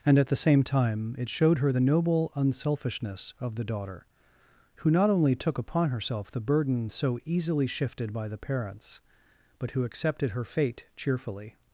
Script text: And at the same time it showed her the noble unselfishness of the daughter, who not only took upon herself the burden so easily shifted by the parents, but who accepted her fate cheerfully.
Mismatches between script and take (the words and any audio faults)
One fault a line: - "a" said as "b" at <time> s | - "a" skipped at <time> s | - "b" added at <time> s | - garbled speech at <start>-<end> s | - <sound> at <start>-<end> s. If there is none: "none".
none